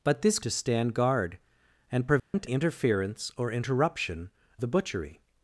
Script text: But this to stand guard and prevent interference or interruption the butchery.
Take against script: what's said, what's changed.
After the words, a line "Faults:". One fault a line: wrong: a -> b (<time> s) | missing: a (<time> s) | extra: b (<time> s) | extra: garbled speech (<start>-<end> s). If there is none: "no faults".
But this to stand guard and prevent interference or interruption the butchery.
Faults:
no faults